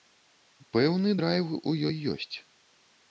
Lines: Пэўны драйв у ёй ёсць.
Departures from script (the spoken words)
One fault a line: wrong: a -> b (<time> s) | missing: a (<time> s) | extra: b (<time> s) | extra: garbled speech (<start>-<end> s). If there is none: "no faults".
no faults